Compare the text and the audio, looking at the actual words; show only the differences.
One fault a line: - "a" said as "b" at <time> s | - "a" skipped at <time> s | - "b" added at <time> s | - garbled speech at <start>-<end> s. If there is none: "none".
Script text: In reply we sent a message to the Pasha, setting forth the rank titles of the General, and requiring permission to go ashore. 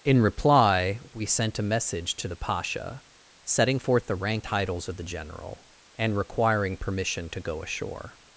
none